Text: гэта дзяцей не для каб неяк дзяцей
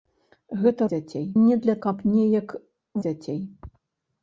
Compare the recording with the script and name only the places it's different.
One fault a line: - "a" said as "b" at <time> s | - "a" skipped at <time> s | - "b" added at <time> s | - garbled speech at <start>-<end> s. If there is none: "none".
none